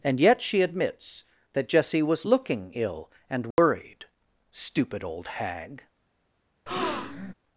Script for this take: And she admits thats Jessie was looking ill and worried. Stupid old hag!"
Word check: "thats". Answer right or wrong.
wrong